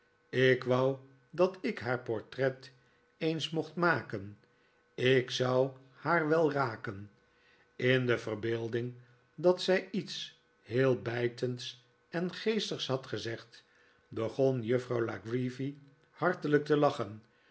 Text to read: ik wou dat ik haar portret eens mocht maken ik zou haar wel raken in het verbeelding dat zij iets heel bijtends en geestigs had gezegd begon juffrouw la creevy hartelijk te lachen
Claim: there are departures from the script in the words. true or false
true